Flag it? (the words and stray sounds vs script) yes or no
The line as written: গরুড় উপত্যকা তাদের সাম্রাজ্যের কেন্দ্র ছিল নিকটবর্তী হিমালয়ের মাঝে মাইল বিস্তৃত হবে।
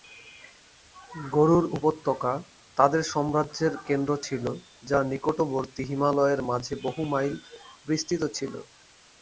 yes